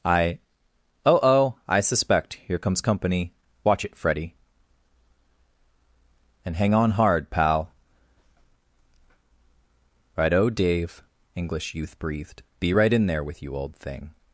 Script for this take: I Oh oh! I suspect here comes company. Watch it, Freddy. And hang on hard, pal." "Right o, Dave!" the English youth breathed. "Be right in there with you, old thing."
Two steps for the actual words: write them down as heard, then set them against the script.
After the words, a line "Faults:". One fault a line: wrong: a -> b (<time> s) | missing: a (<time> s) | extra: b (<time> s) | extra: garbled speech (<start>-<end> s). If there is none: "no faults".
I Oh oh! I suspect here comes company. Watch it, Freddy. And hang on hard, pal." "Right o, Dave!" English youth breathed. "Be right in there with you, old thing."
Faults:
missing: the (11.0 s)